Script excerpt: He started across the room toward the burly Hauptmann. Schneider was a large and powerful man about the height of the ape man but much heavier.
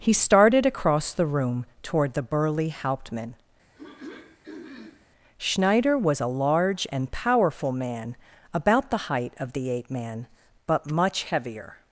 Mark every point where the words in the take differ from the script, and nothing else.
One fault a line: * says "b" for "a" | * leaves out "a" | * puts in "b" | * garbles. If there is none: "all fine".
all fine